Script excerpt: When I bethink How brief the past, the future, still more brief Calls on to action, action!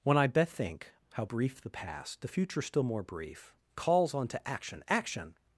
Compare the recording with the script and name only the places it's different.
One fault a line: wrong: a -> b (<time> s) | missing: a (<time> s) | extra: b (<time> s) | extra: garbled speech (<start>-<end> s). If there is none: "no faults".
no faults